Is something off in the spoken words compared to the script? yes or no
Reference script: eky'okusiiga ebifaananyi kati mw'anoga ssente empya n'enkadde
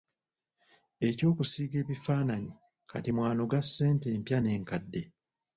no